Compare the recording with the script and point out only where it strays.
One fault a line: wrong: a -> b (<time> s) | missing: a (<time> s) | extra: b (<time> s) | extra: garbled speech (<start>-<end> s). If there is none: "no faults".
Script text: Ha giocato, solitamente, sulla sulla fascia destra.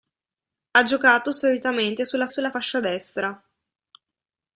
no faults